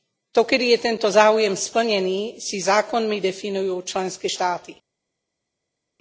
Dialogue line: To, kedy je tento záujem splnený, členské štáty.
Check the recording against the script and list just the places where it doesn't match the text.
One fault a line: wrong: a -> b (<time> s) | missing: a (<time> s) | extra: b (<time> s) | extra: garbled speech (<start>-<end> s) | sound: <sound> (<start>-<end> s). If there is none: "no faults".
extra: si zákonmi definujú (2.3 s)